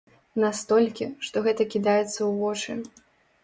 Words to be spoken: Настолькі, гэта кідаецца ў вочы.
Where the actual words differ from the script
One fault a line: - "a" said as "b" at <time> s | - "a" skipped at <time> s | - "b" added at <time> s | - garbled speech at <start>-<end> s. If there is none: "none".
- "што" added at 1.3 s